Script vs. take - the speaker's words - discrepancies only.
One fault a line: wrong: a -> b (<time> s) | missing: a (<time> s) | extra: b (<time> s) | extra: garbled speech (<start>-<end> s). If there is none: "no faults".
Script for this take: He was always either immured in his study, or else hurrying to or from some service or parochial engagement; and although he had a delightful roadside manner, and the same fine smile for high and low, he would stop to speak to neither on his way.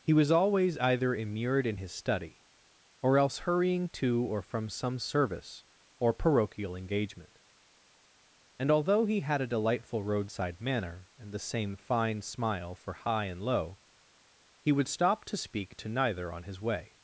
no faults